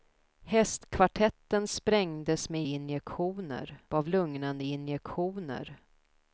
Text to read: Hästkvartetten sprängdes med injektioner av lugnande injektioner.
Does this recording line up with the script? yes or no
yes